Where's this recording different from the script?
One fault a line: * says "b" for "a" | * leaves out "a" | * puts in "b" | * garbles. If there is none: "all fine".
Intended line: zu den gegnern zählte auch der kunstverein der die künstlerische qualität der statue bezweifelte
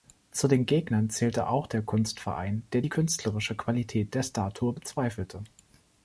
all fine